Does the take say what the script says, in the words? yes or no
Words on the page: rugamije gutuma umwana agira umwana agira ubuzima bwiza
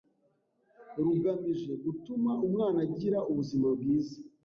no